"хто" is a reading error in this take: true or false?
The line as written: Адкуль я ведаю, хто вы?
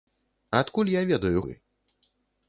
true